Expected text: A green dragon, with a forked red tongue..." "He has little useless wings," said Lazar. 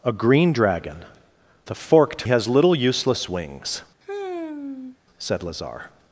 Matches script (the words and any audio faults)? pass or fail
fail